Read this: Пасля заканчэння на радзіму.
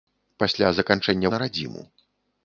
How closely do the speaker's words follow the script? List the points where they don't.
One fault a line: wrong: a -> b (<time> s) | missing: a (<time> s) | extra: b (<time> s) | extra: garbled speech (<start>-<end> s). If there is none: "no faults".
no faults